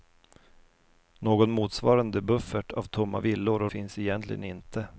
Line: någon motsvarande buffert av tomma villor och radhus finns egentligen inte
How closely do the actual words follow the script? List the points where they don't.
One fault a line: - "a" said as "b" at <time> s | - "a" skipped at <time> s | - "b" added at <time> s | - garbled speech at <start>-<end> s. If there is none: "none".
- "radhus" skipped at 3.7 s